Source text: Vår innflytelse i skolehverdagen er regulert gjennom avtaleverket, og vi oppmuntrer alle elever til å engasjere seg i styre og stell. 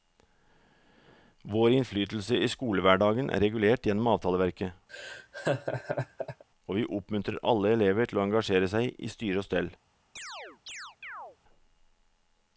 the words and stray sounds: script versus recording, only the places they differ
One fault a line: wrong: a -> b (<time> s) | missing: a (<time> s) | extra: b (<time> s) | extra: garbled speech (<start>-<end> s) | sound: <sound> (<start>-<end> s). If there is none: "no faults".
sound: laugh (4.9-6.4 s)
sound: chirp (10.2-11.4 s)